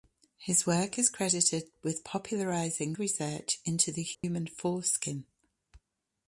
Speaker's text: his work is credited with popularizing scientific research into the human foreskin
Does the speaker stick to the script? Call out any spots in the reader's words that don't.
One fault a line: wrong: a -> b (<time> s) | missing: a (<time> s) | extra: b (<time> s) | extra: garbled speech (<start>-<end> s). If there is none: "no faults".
missing: scientific (3.0 s)